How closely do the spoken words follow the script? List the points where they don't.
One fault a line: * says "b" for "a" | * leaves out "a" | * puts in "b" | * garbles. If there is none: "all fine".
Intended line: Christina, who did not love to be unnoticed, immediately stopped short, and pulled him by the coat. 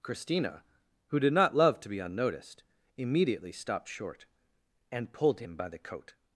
all fine